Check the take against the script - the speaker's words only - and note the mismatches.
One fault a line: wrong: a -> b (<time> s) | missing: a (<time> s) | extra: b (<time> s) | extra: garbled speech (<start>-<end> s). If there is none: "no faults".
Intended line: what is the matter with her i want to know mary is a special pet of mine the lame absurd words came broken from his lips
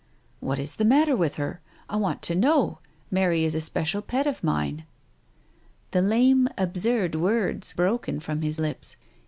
missing: came (7.7 s)